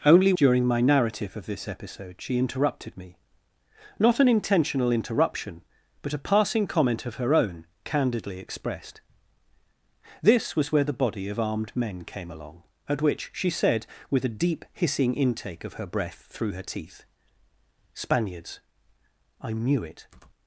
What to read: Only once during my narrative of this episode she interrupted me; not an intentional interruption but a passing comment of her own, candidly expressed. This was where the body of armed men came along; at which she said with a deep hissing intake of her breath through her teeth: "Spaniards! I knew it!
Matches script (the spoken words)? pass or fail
fail